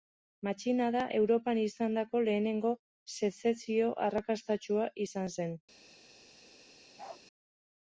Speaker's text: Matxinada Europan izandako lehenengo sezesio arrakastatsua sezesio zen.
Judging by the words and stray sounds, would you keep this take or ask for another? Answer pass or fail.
fail